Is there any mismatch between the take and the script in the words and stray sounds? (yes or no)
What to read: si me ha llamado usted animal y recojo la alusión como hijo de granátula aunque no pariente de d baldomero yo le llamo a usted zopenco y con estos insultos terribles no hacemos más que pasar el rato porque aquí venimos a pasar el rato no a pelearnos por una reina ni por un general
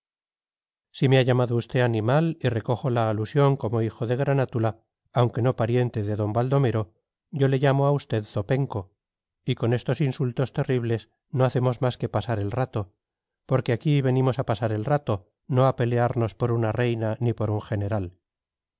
no